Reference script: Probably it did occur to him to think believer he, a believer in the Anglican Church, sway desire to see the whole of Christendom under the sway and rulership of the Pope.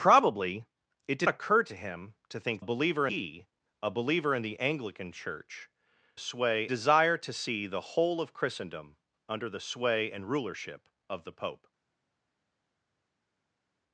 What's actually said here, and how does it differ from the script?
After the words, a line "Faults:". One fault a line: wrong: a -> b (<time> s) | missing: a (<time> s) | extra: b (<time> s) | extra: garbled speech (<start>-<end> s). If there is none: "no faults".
Probably it did occur to him to think believer he, a believer in the Anglican Church, sway desire to see the whole of Christendom under the sway and rulership of the Pope.
Faults:
no faults